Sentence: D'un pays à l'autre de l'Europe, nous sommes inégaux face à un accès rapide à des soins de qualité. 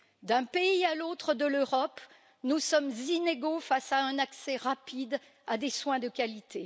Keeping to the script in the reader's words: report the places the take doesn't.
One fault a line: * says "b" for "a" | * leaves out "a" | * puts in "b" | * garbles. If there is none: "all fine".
all fine